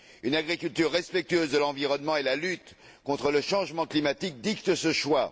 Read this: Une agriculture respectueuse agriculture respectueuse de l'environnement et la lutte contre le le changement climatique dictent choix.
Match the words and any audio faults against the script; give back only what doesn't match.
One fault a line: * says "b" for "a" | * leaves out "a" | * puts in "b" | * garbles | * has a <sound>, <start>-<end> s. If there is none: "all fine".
* leaves out "agriculture respectueuse"
* leaves out "le"
* puts in "ce"